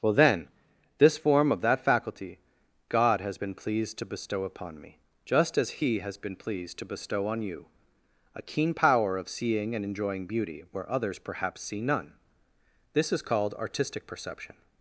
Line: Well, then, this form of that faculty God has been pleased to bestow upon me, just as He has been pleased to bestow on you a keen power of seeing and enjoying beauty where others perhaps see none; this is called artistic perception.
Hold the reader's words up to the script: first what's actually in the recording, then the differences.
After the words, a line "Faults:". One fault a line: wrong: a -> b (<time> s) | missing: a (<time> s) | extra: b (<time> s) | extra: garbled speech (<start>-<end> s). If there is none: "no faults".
Well, then, this form of that faculty God has been pleased to bestow upon me, just as He has been pleased to bestow on you a keen power of seeing and enjoying beauty where others perhaps see none; this is called artistic perception.
Faults:
no faults